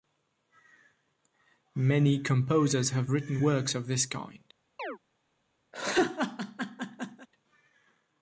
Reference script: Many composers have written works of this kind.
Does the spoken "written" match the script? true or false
true